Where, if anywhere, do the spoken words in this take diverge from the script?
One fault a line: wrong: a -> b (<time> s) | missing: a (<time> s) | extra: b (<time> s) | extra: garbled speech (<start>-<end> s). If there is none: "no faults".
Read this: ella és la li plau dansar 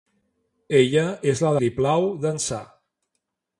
no faults